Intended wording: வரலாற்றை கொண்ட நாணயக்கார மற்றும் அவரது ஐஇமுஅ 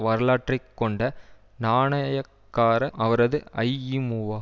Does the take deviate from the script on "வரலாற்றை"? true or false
false